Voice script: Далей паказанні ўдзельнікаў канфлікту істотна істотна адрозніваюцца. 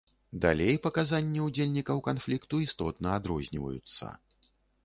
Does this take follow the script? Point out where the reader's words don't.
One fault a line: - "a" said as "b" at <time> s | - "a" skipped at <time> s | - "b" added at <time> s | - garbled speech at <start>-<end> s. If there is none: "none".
- "істотна" skipped at 3.1 s